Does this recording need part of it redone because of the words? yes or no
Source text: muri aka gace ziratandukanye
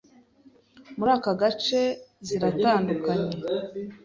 no